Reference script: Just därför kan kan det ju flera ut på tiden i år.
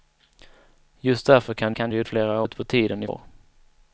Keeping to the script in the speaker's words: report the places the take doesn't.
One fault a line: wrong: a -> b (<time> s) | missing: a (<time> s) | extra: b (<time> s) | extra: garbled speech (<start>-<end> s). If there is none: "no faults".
no faults